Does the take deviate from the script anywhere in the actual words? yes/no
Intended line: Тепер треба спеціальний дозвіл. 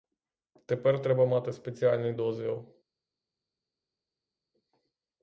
yes